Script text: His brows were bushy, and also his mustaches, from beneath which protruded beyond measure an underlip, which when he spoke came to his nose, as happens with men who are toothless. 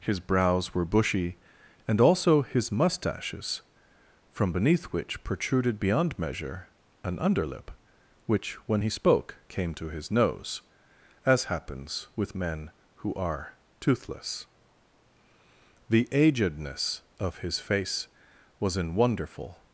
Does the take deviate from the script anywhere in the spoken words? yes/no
yes